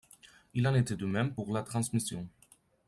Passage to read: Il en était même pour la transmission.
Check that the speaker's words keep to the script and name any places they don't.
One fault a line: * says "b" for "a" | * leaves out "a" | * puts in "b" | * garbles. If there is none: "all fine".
* puts in "de"